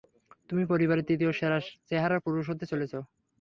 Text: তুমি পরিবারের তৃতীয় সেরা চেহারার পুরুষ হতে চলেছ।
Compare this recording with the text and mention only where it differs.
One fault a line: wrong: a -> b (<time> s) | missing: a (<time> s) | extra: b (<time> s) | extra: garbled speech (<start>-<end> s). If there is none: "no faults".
no faults